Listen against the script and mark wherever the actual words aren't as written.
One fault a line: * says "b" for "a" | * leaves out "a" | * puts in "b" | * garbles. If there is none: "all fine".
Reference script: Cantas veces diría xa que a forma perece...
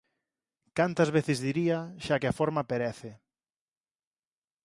all fine